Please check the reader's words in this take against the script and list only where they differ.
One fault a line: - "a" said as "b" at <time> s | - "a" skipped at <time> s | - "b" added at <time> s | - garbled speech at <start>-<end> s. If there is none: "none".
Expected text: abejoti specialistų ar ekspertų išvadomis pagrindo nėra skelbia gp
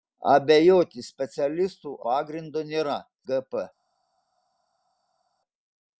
- "ar ekspertų išvadomis" skipped at 1.9 s
- "skelbia" skipped at 3.0 s